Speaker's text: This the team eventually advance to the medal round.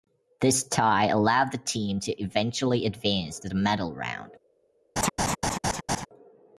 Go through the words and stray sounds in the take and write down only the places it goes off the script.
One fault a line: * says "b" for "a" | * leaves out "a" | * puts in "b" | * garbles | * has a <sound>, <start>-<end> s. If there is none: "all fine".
* puts in "tie allowed"
* puts in "to"
* has a laugh, 5.0-6.1 s